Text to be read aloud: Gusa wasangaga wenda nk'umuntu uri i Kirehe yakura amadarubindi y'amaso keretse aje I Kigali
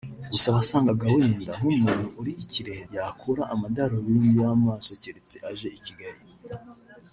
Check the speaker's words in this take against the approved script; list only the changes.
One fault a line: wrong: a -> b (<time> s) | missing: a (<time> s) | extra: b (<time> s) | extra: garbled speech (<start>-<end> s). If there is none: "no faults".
no faults